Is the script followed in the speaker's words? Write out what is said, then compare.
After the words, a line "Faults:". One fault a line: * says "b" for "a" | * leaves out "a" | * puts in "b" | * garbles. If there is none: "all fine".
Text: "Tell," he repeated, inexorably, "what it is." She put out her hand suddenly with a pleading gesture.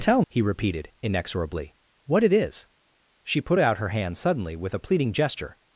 "Tell," he repeated, inexorably, "what it is." She put out her hand suddenly with a pleading gesture.
Faults:
all fine